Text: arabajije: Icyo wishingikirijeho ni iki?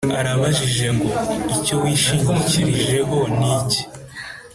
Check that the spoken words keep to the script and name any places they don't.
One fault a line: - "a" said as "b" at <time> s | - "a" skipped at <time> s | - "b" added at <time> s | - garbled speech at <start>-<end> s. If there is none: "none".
- "ngo" added at 0.9 s